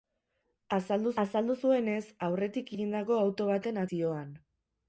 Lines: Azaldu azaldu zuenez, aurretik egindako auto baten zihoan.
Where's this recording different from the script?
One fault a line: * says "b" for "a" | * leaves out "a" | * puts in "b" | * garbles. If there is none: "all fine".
all fine